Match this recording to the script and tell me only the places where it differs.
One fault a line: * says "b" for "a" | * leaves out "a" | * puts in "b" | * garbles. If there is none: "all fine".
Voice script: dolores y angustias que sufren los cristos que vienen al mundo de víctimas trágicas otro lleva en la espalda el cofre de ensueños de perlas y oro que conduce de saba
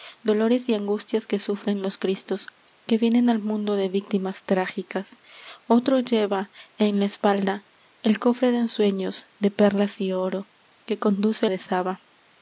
all fine